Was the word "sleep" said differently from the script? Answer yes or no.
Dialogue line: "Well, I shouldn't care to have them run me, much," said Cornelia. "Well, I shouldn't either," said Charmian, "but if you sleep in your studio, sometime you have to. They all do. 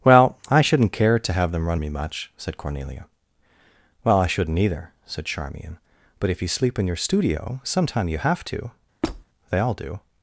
no